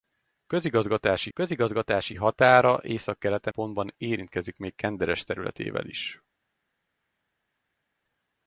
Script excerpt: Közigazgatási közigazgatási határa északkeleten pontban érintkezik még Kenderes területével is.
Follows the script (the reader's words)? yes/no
yes